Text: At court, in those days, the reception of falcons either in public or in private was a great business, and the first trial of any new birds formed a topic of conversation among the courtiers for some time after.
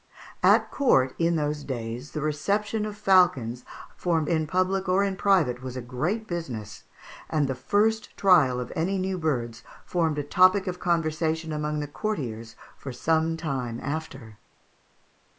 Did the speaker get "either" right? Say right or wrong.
wrong